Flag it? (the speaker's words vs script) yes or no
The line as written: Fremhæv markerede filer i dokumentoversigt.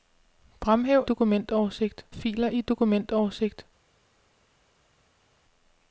yes